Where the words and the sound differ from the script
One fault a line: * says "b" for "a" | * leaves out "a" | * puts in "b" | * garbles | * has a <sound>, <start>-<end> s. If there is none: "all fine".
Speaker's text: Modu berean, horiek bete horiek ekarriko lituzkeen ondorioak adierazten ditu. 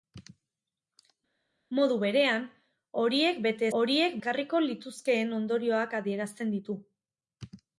all fine